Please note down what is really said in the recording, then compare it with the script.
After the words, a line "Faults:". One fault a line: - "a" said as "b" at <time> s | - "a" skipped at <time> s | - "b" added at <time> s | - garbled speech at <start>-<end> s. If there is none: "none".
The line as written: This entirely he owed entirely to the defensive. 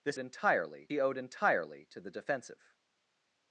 This entirely he owed entirely to the defensive.
Faults:
none